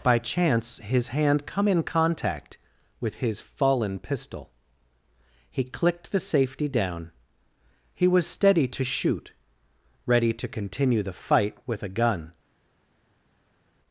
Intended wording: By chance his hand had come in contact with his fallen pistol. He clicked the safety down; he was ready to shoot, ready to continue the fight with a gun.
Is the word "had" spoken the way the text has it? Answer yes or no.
no